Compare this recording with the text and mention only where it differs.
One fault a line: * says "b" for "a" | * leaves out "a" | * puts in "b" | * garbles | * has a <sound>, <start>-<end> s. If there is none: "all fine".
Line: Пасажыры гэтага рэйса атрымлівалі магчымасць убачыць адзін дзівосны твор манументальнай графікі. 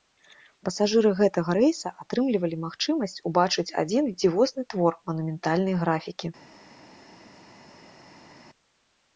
all fine